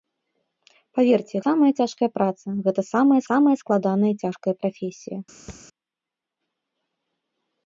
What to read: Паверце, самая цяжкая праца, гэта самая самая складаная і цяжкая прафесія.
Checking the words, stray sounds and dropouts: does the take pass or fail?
fail